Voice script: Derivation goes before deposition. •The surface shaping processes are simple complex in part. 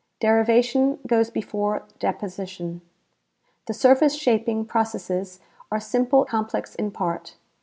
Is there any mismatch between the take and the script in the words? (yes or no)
no